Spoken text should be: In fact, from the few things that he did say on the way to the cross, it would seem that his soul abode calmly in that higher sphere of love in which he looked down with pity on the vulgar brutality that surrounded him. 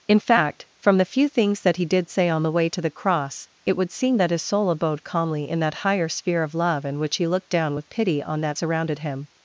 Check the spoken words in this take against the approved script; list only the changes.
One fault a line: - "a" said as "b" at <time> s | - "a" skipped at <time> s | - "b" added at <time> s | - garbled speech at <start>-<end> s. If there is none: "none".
- "the vulgar brutality" skipped at 8.4 s